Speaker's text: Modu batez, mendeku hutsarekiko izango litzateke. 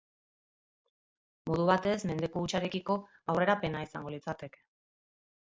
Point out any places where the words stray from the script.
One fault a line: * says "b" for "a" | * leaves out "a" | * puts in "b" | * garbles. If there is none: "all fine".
* puts in "aurrerapena"